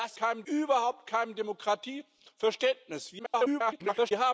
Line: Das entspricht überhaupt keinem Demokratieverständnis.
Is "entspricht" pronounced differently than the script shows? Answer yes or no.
yes